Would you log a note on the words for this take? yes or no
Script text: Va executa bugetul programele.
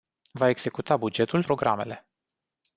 no